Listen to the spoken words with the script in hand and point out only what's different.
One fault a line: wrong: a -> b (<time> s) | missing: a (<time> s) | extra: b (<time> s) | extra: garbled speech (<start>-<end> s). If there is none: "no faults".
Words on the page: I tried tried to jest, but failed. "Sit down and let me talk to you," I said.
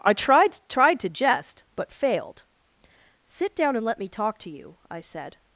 no faults